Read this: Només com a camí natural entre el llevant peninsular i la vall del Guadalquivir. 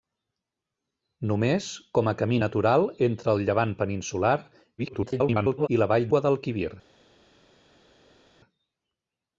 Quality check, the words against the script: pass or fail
fail